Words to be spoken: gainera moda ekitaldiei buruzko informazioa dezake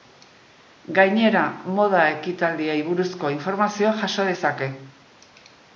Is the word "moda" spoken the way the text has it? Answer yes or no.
yes